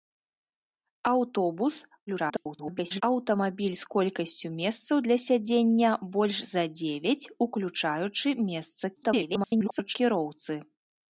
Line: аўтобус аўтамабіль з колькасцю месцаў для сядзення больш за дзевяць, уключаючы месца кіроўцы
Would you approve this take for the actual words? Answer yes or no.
no